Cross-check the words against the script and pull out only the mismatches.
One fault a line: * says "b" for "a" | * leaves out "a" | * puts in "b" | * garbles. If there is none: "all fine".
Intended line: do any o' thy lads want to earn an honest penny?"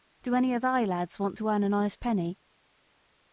all fine